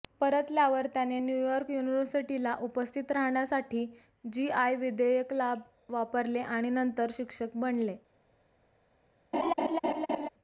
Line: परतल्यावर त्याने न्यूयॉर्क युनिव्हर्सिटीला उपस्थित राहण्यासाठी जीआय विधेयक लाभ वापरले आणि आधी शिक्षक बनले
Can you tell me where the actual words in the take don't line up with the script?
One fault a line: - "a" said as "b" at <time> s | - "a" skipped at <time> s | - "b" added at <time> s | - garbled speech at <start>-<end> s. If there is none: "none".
- "आधी" said as "नंतर" at 6.7 s